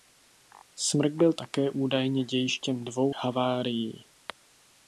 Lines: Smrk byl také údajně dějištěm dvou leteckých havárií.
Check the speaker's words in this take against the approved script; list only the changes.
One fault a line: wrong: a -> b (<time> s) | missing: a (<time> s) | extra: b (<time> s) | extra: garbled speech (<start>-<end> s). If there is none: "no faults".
missing: leteckých (3.2 s)